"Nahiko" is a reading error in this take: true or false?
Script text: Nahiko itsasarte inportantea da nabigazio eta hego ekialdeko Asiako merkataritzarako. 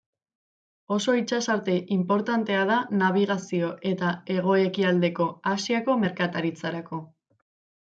true